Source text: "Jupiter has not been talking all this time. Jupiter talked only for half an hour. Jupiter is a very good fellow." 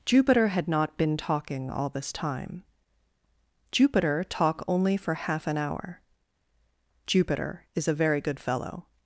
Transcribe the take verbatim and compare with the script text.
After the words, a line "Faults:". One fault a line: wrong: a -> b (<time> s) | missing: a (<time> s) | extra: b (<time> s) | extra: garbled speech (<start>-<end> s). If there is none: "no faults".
"Jupiter had not been talking all this time. Jupiter talk only for half an hour. Jupiter is a very good fellow."
Faults:
wrong: has -> had (0.5 s)
wrong: talked -> talk (4.2 s)